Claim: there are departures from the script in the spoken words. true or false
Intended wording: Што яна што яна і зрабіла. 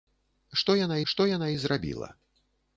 false